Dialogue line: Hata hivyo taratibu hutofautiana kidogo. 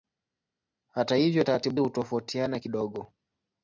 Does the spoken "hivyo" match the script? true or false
true